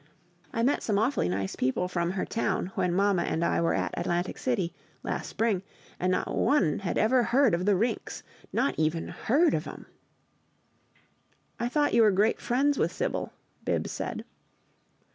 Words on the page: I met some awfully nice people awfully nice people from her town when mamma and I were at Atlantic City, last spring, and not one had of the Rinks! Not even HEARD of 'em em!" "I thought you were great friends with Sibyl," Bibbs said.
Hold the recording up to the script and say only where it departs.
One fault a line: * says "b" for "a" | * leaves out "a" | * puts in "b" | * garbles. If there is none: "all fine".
* leaves out "awfully nice people"
* puts in "ever heard"
* leaves out "em"